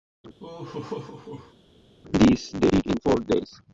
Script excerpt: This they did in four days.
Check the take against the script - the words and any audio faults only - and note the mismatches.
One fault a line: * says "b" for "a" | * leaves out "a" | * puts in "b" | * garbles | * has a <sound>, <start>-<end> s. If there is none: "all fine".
* has a laugh, 0.4-1.5 s